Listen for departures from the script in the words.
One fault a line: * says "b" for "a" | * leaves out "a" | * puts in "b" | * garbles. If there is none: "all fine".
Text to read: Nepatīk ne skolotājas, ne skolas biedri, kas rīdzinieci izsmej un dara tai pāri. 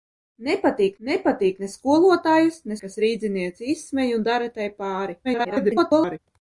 * puts in "nepatīk"
* leaves out "skolas biedri"
* garbles